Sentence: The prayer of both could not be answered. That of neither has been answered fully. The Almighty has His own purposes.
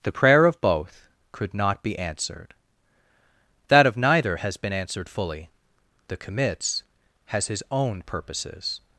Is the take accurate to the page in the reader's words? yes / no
no